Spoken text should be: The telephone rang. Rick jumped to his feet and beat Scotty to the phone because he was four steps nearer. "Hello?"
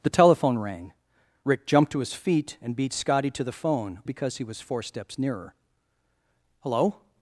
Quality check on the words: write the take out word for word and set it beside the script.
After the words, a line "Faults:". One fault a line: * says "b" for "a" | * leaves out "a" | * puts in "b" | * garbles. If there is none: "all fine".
The telephone rang. Rick jumped to his feet and beat Scotty to the phone because he was four steps nearer. "Hello?"
Faults:
all fine